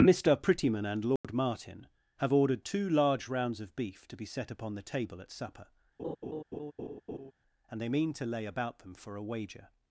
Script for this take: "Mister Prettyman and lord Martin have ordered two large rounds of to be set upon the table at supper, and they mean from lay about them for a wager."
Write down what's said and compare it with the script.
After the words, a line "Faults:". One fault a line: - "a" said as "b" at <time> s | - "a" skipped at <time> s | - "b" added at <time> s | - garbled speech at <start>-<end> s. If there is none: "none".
"Mister Prettyman and lord Martin have ordered two large rounds of beef to be set upon the table at supper, and they mean to lay about them for a wager."
Faults:
- "beef" added at 3.8 s
- "from" said as "to" at 8.1 s